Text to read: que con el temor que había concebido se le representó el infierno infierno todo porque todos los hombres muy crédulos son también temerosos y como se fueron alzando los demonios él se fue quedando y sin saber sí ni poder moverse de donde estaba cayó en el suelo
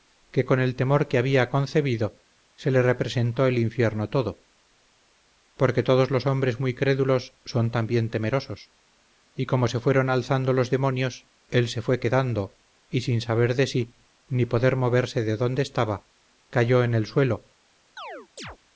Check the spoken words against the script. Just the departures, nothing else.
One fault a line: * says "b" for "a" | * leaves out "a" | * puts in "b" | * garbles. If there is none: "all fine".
* leaves out "infierno"
* puts in "de"